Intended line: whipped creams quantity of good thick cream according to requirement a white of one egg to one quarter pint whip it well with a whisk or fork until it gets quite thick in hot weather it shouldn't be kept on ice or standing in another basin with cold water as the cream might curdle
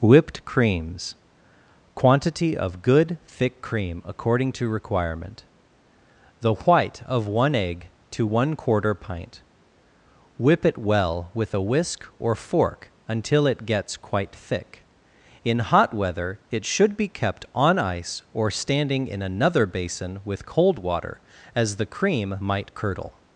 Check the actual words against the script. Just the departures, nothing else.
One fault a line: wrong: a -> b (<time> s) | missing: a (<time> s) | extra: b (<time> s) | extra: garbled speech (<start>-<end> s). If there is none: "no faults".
wrong: a -> the (6.4 s)
wrong: shouldn't -> should (16.6 s)